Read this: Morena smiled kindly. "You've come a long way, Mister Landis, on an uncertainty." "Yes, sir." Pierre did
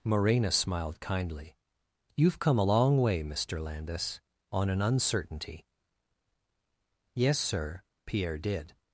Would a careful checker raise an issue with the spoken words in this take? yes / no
no